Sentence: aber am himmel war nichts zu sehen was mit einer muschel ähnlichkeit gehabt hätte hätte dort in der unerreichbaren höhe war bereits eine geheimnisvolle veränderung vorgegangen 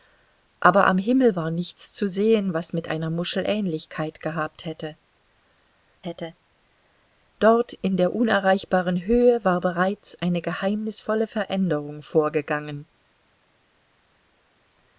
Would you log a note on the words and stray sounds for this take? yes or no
no